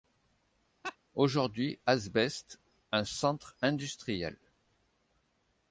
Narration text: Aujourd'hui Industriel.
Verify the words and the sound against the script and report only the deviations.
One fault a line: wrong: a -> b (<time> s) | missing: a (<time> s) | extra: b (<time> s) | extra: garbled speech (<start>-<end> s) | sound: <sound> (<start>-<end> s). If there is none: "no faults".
sound: laugh (0.8-1.0 s)
extra: Asbest un centre (1.9 s)